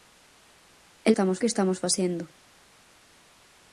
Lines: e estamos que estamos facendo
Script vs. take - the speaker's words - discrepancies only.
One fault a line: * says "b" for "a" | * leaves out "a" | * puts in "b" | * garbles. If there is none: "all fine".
all fine